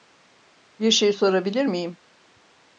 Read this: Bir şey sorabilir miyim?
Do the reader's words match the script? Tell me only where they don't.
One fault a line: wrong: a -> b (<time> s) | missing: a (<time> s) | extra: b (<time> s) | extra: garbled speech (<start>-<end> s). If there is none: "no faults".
no faults